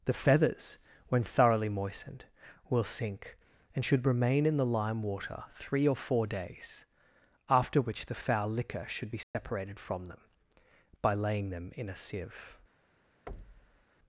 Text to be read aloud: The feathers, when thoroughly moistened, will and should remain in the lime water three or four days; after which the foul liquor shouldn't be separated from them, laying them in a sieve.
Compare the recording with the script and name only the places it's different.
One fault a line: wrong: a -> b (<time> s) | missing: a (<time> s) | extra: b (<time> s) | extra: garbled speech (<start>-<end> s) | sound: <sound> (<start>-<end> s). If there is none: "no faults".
extra: sink (2.8 s)
wrong: shouldn't -> should (8.9 s)
sound: dropout (9.2-9.3 s)
extra: by (11.0 s)
sound: thud (13.3-13.9 s)